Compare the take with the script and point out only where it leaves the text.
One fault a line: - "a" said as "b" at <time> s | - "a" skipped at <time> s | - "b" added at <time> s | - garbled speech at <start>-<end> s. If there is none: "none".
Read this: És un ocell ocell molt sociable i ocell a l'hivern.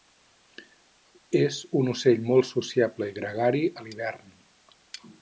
- "ocell" skipped at 2.2 s
- "ocell" said as "gregari" at 3.2 s